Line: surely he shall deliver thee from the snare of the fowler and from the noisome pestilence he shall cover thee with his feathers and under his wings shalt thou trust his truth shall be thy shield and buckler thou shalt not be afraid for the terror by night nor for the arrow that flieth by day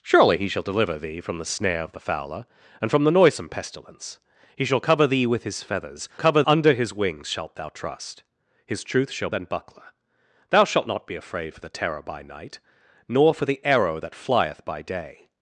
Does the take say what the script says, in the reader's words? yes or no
no